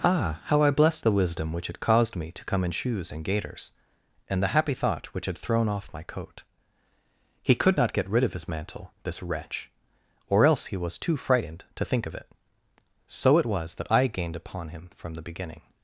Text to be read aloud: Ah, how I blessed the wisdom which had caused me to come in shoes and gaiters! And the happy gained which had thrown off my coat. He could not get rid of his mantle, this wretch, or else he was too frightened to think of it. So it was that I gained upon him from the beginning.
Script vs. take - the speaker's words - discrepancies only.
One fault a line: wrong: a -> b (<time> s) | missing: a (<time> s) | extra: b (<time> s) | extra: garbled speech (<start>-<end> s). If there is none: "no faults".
wrong: gained -> thought (4.7 s)